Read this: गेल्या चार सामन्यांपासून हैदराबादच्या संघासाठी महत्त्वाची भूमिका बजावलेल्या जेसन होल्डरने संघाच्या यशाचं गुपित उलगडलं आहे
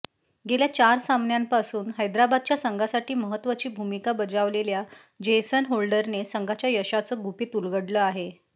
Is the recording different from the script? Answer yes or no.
no